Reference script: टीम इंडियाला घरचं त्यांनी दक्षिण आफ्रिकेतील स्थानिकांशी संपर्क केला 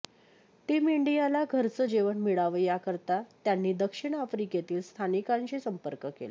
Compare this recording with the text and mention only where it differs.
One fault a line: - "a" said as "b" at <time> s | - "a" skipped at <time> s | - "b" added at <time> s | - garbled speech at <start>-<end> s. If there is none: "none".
- "जेवण मिळावं याकरता" added at 1.8 s